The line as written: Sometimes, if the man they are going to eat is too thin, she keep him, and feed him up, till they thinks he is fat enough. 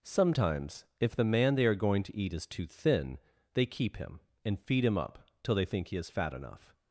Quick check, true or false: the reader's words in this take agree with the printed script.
false